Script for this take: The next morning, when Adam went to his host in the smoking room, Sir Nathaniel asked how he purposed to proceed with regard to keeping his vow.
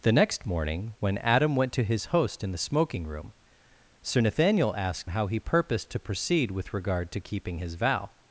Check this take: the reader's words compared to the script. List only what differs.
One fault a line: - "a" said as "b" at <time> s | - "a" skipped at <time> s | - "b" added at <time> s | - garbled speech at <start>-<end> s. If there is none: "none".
none